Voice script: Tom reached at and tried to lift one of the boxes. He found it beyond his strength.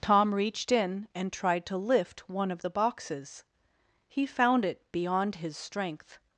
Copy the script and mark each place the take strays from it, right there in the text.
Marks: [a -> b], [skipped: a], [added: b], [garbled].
Tom reached [at -> in] and tried to lift one of the boxes. He found it beyond his strength.